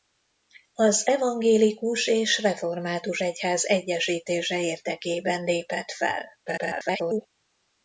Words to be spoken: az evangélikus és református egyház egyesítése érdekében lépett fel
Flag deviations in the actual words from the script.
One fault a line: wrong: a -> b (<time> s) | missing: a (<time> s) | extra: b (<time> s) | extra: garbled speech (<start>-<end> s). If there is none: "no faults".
extra: garbled speech (6.5-7.3 s)